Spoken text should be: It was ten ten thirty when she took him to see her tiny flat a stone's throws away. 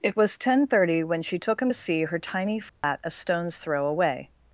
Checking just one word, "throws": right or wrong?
wrong